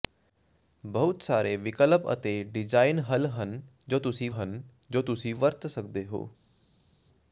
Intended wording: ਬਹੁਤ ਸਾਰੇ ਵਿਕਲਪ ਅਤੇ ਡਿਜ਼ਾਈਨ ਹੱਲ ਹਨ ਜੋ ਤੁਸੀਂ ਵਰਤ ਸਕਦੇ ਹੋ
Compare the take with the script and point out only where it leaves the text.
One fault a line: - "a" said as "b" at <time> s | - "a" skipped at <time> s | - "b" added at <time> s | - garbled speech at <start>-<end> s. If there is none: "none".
- "ਹਨ ਜੋ ਤੁਸੀਂ" added at 4.3 s